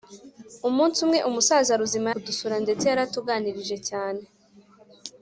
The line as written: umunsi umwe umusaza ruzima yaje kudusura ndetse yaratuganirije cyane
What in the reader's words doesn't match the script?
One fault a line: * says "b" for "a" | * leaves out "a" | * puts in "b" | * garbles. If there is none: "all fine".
* leaves out "yaje"